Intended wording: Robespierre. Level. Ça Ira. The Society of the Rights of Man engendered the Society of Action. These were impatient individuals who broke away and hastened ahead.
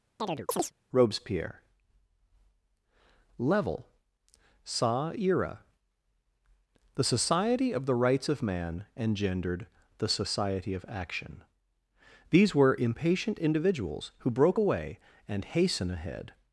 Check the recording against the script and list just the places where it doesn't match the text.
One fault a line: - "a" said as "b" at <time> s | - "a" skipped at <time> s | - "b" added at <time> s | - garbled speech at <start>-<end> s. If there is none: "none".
- "hastened" said as "hasten" at 15.4 s